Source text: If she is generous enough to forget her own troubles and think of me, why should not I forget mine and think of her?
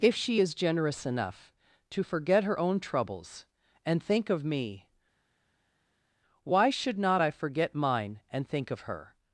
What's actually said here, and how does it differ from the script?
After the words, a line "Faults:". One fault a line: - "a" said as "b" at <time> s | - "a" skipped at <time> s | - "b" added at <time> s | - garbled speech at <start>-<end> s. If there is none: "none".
If she is generous enough to forget her own troubles and think of me, why should not I forget mine and think of her?
Faults:
none